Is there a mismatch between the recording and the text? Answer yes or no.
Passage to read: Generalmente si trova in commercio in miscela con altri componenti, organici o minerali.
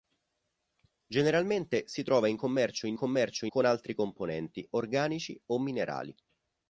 yes